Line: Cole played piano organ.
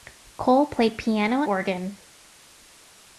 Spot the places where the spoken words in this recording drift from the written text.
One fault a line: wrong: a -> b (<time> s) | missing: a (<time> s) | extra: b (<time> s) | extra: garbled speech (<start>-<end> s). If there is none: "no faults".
no faults